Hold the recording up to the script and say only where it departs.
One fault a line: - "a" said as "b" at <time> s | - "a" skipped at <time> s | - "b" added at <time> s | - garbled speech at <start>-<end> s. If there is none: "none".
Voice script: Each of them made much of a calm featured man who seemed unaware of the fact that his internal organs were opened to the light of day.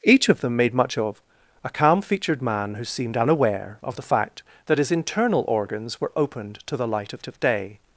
- "of" added at 7.3 s